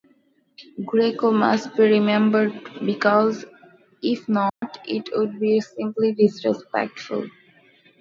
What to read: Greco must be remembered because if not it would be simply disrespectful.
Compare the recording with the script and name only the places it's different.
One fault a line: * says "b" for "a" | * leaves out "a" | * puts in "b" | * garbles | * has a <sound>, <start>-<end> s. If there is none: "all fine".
* has a dropout, 4.5-4.6 s